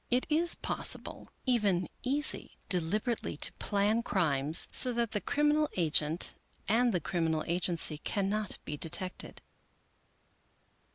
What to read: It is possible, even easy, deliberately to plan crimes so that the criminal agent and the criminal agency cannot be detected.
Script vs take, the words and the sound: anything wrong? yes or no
no